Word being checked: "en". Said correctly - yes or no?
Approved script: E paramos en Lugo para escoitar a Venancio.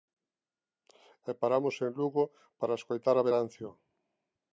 yes